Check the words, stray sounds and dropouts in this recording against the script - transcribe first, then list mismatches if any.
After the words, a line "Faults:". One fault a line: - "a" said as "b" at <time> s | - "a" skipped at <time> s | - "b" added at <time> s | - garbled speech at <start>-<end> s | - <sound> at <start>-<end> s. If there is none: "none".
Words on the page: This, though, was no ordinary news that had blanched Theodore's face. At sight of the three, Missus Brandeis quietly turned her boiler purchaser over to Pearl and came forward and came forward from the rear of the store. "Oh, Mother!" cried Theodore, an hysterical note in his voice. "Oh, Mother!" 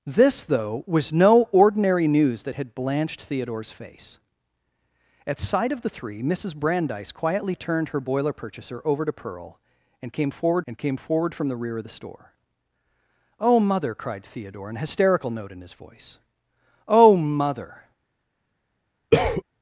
This, though, was no ordinary news that had blanched Theodore's face. At sight of the three, Missus Brandeis quietly turned her boiler purchaser over to Pearl and came forward and came forward from the rear of the store. "Oh, Mother!" cried Theodore, an hysterical note in his voice. "Oh, Mother!"
Faults:
- cough at 19.1-19.4 s